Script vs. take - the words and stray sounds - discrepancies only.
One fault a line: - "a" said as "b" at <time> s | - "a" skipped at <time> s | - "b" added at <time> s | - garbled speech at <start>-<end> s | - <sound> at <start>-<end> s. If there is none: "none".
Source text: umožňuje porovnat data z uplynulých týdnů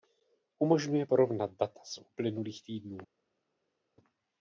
none